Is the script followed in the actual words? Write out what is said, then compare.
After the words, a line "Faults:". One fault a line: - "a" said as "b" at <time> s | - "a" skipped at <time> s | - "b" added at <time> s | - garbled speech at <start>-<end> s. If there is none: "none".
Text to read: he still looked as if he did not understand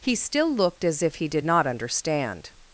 he still looked as if he did not understand
Faults:
none